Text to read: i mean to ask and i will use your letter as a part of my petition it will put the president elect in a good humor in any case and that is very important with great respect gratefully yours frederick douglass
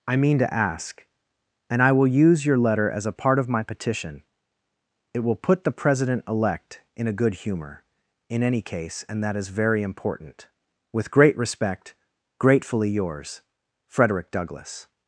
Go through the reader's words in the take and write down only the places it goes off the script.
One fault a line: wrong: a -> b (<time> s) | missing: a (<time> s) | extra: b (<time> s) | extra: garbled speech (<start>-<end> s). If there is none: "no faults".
no faults